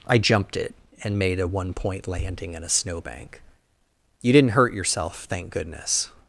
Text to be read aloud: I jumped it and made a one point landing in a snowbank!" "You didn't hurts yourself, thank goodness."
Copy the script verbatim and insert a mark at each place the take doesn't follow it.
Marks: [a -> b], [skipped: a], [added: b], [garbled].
I jumped it and made a one point landing in a snowbank!" "You didn't [hurts -> hurt] yourself, thank goodness."